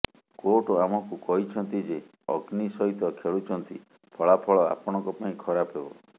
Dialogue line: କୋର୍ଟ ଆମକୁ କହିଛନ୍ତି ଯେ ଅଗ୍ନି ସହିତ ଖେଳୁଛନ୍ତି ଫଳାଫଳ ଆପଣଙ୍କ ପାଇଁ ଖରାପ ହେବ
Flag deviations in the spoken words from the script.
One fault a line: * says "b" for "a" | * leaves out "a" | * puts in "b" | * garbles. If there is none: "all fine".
all fine